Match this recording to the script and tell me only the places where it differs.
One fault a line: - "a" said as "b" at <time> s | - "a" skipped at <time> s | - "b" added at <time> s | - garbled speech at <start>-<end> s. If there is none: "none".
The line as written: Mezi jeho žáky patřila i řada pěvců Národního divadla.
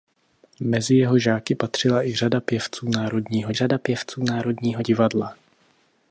- "řada pěvců Národního" added at 3.5 s